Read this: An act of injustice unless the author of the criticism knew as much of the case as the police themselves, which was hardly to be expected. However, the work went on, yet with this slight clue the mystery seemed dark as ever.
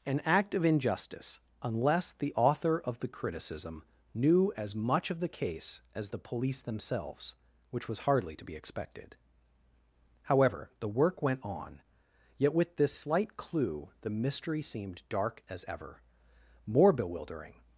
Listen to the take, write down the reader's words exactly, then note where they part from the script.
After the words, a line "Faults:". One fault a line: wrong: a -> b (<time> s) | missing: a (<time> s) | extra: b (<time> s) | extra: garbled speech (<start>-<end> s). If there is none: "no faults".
An act of injustice unless the author of the criticism knew as much of the case as the police themselves, which was hardly to be expected. However, the work went on, yet with this slight clue the mystery seemed dark as ever. More bewildering
Faults:
extra: More bewildering (16.7 s)